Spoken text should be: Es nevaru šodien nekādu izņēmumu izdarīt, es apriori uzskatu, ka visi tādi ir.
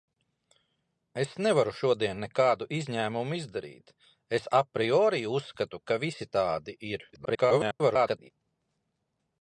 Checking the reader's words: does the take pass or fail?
fail